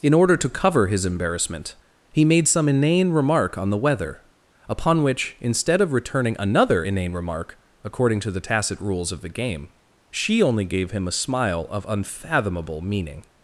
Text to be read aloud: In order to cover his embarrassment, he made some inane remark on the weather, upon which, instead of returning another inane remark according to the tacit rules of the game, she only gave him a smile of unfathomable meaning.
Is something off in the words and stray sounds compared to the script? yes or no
no